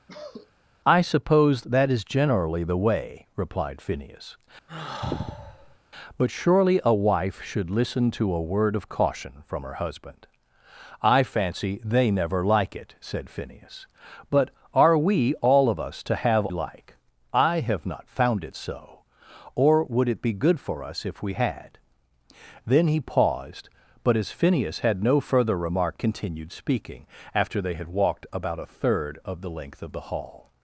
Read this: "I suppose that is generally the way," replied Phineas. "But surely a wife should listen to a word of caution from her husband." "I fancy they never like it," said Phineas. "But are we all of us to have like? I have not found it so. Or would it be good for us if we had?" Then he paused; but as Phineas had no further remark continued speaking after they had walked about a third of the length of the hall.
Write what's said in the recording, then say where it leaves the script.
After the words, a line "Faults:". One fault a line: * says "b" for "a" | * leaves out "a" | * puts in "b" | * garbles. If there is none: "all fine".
"I suppose that is generally the way," replied Phineas. "But surely a wife should listen to a word of caution from her husband." "I fancy they never like it," said Phineas. "But are we all of us to have like? I have not found it so. Or would it be good for us if we had?" Then he paused; but as Phineas had no further remark continued speaking after they had walked about a third of the length of the hall.
Faults:
all fine